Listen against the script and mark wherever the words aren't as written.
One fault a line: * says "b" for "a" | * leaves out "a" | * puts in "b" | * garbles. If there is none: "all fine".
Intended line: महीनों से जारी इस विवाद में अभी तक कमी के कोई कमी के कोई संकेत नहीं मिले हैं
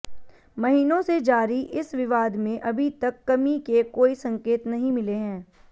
* leaves out "कमी के कोई"